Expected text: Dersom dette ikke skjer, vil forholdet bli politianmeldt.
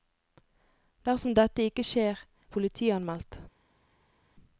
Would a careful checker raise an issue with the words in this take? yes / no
yes